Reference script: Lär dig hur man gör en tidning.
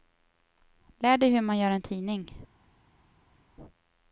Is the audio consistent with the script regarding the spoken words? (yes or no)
yes